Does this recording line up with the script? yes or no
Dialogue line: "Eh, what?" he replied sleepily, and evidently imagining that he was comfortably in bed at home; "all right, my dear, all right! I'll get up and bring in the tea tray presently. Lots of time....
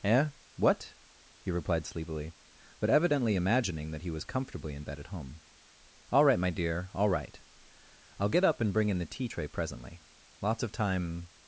no